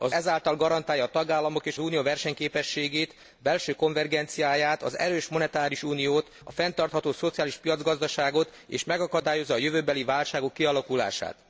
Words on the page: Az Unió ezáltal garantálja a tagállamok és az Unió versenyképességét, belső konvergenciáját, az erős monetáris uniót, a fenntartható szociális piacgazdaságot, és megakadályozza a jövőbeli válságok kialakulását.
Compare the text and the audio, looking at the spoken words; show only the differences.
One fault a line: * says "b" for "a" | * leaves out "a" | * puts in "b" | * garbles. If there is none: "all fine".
* leaves out "Unió"
* leaves out "az"